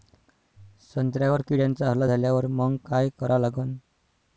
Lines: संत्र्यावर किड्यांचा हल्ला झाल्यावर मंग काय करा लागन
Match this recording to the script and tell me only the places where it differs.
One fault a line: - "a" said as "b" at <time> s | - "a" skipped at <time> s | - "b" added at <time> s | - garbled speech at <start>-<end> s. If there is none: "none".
none